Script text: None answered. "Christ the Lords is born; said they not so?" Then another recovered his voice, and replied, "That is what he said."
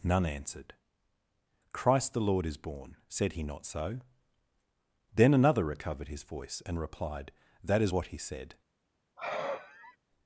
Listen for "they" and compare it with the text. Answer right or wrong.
wrong